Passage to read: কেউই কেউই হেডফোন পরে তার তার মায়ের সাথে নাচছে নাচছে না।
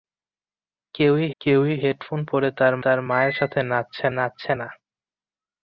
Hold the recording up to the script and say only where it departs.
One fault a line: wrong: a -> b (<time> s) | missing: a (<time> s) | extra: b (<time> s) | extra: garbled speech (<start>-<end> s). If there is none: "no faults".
no faults